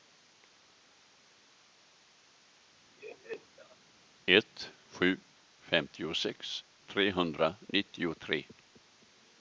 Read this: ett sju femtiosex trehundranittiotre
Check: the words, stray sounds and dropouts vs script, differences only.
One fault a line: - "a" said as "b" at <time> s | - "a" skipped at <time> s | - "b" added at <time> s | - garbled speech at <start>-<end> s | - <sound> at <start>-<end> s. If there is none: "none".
- laugh at 3.0-3.8 s